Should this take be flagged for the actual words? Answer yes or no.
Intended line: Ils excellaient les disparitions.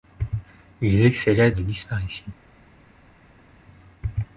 no